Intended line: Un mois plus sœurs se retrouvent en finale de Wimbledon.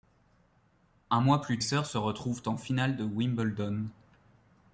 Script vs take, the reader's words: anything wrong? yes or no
no